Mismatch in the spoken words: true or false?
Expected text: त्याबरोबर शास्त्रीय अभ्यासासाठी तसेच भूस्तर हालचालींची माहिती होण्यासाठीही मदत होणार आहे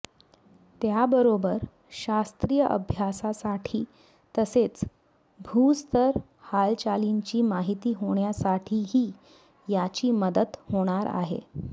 true